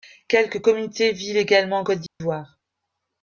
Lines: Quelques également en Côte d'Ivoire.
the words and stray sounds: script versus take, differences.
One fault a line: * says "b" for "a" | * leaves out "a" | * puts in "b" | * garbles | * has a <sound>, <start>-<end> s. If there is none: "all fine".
* puts in "communautés vivent"
* has a dropout, 2.1-2.2 s